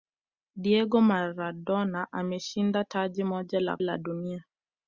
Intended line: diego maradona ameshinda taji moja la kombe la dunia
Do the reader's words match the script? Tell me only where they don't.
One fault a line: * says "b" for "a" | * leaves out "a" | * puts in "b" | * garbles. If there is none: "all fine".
* leaves out "kombe"